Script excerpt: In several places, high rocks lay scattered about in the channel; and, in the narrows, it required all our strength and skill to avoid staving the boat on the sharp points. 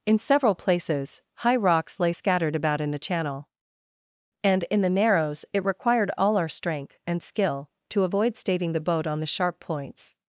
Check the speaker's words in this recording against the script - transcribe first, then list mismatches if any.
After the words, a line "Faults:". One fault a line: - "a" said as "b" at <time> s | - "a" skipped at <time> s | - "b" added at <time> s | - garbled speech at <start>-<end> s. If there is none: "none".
In several places, high rocks lay scattered about in the channel; and, in the narrows, it required all our strength and skill to avoid staving the boat on the sharp points.
Faults:
none